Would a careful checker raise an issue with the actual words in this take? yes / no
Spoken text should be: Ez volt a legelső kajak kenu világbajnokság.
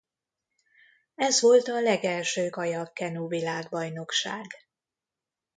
no